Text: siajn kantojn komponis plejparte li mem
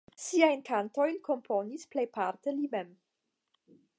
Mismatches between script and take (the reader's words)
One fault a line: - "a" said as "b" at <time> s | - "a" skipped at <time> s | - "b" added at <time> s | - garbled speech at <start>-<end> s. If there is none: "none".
none